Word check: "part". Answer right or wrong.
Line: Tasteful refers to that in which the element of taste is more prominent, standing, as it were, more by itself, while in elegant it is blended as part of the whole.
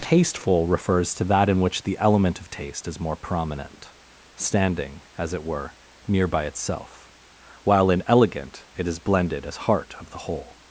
wrong